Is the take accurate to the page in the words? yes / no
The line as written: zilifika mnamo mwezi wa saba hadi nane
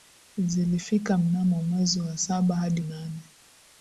yes